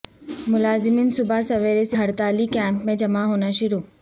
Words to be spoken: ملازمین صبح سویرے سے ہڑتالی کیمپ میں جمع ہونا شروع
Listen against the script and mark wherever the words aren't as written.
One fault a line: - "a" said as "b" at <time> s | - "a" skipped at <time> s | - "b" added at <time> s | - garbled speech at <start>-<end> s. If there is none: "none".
none